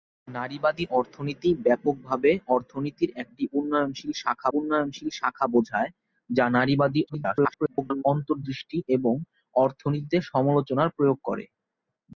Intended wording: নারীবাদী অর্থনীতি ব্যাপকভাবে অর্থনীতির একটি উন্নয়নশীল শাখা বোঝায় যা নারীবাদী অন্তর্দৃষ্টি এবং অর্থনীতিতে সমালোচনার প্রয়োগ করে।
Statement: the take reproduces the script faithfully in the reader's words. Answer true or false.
false